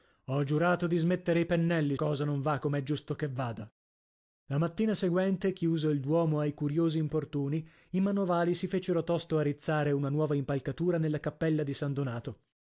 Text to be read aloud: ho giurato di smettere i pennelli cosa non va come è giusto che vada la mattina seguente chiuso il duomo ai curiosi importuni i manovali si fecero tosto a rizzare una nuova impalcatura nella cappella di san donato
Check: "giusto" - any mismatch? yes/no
no